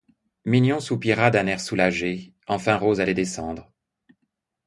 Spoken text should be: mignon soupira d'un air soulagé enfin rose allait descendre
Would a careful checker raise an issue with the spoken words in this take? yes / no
no